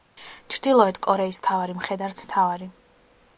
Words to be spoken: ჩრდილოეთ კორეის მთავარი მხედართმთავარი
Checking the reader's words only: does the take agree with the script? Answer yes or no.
yes